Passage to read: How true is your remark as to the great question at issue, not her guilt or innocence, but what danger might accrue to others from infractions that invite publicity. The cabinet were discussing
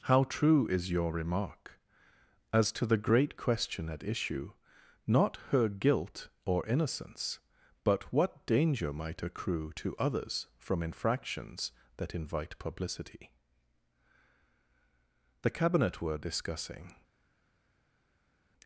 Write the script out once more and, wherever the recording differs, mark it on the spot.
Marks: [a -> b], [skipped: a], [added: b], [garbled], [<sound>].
How true is your remark as to the great question at issue, not her guilt or innocence, but what danger might accrue to others from infractions that invite publicity. The cabinet were discussing